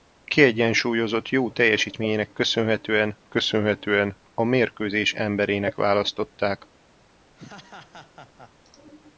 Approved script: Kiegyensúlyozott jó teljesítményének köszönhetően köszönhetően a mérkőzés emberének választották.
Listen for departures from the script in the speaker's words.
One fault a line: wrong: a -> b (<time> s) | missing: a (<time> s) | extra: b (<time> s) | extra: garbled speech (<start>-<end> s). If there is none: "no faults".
no faults